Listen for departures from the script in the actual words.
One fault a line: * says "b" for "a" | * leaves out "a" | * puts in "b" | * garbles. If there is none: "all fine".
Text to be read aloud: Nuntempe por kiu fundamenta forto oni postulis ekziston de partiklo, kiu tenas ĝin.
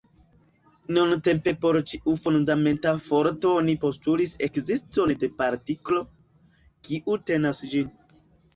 * says "ĉiu" for "kiu"